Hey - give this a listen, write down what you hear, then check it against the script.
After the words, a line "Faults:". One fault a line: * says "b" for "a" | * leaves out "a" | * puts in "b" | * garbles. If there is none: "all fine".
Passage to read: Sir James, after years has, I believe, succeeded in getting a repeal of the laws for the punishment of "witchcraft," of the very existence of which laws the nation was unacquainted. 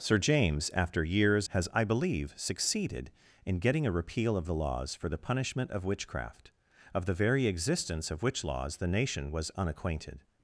Sir James, after years has, I believe, succeeded in getting a repeal of the laws for the punishment of "witchcraft," of the very existence of which laws the nation was unacquainted.
Faults:
all fine